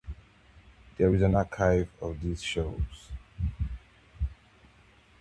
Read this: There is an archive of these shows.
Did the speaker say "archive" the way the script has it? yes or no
yes